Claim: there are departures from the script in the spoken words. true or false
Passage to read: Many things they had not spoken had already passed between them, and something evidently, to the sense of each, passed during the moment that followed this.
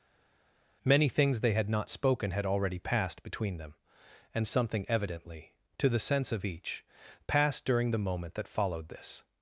false